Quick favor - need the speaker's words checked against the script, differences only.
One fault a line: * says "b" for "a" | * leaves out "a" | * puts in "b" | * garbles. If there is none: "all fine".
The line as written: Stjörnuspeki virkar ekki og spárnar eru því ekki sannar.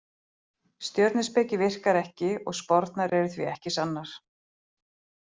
all fine